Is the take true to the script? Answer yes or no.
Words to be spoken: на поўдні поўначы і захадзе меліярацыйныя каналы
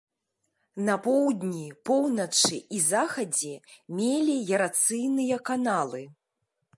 yes